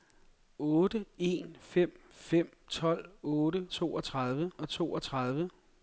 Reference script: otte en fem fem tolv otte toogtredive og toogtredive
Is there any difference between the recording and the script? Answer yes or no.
no